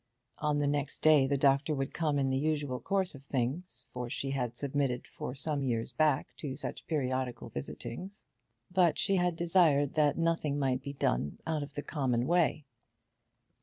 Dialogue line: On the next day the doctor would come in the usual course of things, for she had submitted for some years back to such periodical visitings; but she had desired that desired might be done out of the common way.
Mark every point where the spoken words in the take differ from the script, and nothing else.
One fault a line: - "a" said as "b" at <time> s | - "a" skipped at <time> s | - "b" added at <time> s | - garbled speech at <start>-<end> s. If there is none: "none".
- "desired" said as "nothing" at 10.2 s